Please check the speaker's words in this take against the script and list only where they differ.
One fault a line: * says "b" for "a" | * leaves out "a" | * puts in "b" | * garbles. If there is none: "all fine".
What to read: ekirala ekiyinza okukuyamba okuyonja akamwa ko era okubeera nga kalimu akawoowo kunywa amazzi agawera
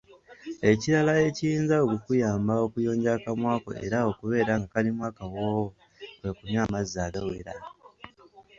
* puts in "kwe"